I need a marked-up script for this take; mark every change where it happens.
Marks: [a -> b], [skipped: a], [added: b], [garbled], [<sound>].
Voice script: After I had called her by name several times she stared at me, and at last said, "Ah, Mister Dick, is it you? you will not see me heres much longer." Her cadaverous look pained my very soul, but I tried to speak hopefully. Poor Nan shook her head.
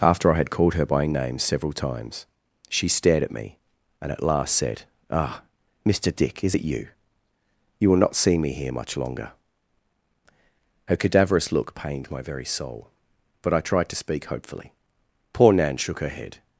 After I had called her by name several times she stared at me, and at last said, "Ah, Mister Dick, is it you? you will not see me [heres -> here] much longer." Her cadaverous look pained my very soul, but I tried to speak hopefully. Poor Nan shook her head.